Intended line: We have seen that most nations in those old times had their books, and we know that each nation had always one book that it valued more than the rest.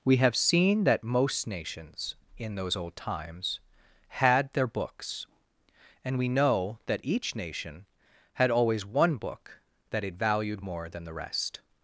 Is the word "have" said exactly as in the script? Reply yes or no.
yes